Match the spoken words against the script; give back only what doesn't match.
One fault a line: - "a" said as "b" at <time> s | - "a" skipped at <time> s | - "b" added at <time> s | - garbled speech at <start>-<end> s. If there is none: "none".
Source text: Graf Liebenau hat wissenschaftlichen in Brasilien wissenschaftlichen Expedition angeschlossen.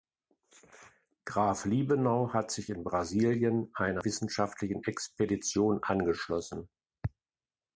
- "wissenschaftlichen" said as "sich" at 2.5 s
- "einer" added at 3.7 s